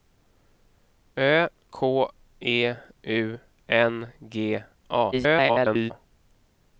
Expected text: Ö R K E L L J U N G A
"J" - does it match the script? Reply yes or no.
no